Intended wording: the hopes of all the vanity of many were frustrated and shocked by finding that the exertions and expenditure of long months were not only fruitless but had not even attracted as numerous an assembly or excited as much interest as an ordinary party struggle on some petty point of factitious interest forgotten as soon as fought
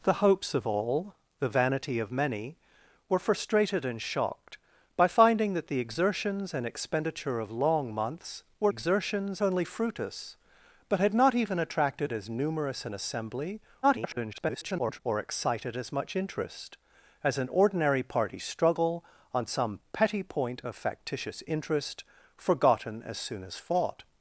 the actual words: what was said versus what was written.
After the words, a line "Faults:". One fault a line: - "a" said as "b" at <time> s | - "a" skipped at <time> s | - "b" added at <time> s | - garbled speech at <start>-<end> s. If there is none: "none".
the hopes of all the vanity of many were frustrated and shocked by finding that the exertions and expenditure of long months were exertions only fruitless but had not even attracted as numerous an assembly [garbled] or excited as much interest as an ordinary party struggle on some petty point of factitious interest forgotten as soon as fought
Faults:
- "not" said as "exertions" at 8.7 s
- garbled speech at 13.8-15.0 s